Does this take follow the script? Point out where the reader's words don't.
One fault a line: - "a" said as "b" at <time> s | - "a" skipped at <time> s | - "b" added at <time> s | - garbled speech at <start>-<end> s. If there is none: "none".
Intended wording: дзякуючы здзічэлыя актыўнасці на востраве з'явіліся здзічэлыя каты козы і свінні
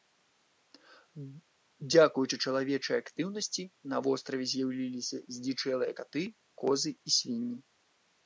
- "здзічэлыя" said as "чалавечай" at 2.5 s